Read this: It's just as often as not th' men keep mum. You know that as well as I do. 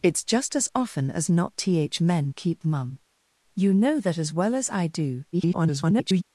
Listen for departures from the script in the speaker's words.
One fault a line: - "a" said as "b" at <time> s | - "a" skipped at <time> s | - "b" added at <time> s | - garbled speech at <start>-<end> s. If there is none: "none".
- garbled speech at 5.3-6.2 s